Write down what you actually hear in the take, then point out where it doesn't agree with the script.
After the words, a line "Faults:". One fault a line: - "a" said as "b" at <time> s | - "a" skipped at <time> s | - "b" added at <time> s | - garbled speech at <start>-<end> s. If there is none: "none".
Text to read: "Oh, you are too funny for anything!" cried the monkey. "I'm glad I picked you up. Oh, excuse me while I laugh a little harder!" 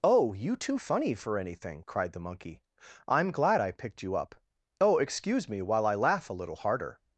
"Oh, you too funny for anything!" cried the monkey. "I'm glad I picked you up. Oh, excuse me while I laugh a little harder!"
Faults:
- "are" skipped at 0.6 s